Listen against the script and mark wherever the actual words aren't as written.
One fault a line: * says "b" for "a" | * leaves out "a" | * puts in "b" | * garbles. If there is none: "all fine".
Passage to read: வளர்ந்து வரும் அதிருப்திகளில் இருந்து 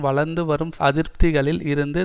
all fine